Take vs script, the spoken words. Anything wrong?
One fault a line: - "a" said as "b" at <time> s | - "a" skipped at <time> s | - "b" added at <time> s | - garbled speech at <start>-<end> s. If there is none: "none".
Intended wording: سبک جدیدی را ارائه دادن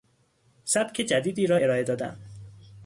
none